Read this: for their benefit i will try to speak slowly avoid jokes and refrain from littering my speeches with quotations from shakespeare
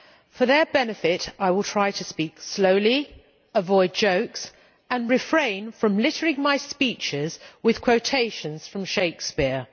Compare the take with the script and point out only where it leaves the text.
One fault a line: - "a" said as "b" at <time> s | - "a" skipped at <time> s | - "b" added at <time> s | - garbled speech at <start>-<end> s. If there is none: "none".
none